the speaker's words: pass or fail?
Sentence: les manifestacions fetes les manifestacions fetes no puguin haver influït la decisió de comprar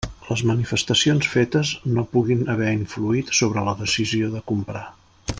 fail